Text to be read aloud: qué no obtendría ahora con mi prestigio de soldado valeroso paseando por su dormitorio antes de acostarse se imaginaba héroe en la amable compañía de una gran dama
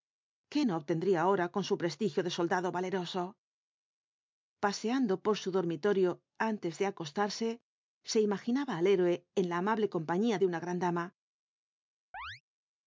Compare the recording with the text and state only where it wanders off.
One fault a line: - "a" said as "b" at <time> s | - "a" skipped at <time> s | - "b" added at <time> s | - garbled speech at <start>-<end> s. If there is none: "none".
- "mi" said as "su" at 1.6 s
- "al" added at 8.8 s